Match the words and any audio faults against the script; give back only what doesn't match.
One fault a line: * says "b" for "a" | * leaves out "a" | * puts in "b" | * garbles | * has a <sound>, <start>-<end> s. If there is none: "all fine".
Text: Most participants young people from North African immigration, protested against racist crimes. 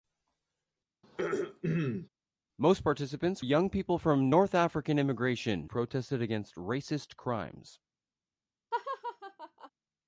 * has a throat clearing, 1.0-2.1 s
* has a laugh, 8.7-9.7 s